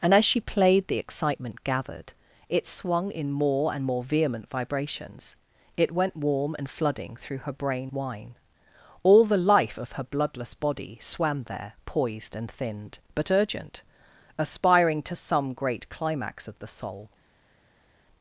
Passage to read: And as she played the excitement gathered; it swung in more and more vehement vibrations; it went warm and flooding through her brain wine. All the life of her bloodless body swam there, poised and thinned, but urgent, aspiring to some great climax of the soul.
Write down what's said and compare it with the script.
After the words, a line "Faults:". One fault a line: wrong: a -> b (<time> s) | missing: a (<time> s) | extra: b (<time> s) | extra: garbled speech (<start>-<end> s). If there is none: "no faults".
And as she played the excitement gathered; it swung in more and more vehement vibrations; it went warm and flooding through her brain wine. All the life of her bloodless body swam there, poised and thinned, but urgent, aspiring to some great climax of the soul.
Faults:
no faults